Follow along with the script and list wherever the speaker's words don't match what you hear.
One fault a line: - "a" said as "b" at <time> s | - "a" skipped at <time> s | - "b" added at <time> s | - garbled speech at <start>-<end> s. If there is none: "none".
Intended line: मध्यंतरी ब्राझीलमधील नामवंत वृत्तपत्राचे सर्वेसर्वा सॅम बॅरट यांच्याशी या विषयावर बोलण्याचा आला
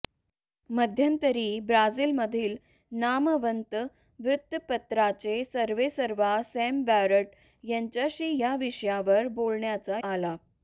none